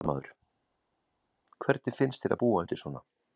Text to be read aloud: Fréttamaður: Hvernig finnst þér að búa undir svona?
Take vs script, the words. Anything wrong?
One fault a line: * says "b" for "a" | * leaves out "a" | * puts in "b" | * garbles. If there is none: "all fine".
all fine